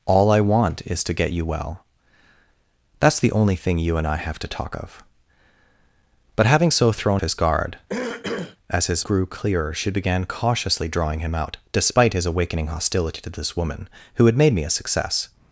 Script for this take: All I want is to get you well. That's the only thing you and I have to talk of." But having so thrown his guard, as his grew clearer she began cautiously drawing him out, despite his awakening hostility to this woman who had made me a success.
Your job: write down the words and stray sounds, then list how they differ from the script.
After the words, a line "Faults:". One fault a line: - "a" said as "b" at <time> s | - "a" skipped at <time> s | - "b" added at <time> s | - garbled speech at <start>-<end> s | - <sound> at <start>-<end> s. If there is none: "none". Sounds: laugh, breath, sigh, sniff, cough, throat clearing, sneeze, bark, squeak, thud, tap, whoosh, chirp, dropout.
All I want is to get you well. That's the only thing you and I have to talk of." But having so thrown his guard, as his grew clearer she began cautiously drawing him out, despite his awakening hostility to this woman who had made me a success.
Faults:
- throat clearing at 7.9-8.6 s